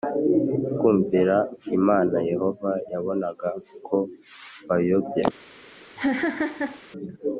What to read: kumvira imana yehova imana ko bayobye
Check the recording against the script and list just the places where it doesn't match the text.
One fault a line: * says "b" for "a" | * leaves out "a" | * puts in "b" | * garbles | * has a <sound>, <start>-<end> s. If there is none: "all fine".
* says "yabonaga" for "imana"
* has a laugh, 6.0-6.8 s